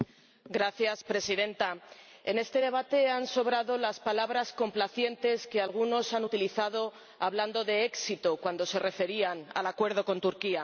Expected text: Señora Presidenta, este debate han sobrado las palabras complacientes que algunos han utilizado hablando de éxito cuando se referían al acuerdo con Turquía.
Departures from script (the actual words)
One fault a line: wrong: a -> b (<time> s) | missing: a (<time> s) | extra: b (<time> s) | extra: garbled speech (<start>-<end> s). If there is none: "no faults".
extra: en (2.2 s)